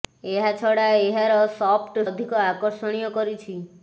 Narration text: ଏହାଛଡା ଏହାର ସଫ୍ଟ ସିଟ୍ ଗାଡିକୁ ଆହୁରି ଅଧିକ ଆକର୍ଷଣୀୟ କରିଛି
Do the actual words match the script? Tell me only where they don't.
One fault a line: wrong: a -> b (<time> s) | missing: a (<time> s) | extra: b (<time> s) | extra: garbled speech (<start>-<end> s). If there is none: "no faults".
missing: ସିଟ୍ ଗାଡିକୁ ଆହୁରି (2.0 s)